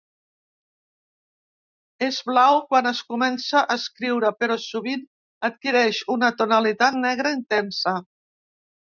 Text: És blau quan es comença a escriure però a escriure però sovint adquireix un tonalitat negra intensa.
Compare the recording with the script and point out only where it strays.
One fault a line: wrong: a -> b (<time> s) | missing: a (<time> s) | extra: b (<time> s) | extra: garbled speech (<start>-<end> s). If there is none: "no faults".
missing: a escriure però (4.6 s)
wrong: un -> una (6.2 s)